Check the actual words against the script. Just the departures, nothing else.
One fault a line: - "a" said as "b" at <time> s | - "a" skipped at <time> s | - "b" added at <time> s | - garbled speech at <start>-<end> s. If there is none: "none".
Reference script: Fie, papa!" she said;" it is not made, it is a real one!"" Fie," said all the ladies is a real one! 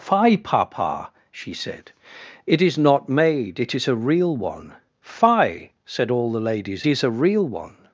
none